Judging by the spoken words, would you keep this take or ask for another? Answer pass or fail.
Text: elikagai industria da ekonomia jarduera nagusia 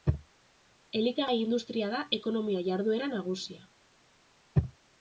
pass